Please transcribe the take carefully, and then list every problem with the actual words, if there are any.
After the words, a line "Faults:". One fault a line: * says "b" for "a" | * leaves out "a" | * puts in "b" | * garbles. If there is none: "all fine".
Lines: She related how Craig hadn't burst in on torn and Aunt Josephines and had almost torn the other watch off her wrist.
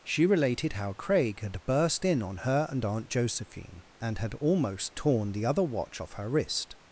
She related how Craig had burst in on her and Aunt Josephine and had almost torn the other watch off her wrist.
Faults:
* says "had" for "hadn't"
* says "her" for "torn"
* says "Josephine" for "Josephines"